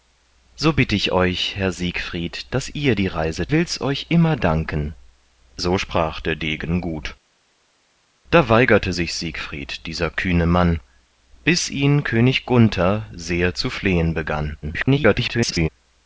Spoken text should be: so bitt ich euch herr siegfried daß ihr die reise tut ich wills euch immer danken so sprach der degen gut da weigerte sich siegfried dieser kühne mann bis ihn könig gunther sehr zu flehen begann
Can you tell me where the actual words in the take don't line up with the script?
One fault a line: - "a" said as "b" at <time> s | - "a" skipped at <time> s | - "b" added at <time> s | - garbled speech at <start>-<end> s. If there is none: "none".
- "tut ich" skipped at 3.5 s
- garbled speech at 14.6-15.7 s